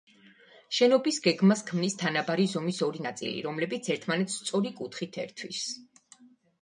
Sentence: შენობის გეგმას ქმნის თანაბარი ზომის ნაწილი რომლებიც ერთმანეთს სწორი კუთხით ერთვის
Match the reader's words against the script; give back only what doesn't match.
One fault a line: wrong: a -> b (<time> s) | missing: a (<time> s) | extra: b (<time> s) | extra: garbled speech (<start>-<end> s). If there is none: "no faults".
extra: ორი (2.9 s)